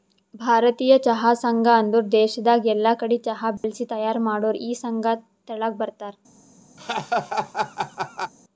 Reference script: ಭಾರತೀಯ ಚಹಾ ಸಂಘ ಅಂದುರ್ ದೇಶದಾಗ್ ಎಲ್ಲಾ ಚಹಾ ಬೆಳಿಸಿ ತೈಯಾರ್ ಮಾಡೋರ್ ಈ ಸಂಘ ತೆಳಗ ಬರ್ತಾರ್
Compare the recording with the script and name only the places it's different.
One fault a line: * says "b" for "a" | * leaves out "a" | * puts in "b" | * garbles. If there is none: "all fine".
* puts in "ಕಡಿ"